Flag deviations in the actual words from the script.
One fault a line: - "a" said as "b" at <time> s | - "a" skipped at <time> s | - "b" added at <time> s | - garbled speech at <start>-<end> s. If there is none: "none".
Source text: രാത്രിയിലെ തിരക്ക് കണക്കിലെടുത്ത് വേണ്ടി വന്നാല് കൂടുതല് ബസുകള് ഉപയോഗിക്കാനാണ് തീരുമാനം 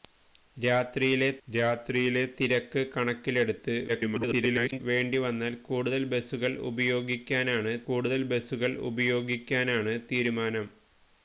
- "രാത്രിയിലെ" added at 1.5 s
- garbled speech at 3.9-4.8 s
- "കൂടുതല് ബസുകള് ഉപയോഗിക്കാനാണ്" added at 7.9 s